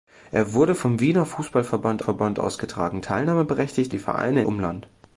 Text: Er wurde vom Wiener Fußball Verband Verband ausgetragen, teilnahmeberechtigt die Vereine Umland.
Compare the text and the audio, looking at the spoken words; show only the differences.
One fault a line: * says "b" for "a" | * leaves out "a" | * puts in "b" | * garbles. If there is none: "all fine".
all fine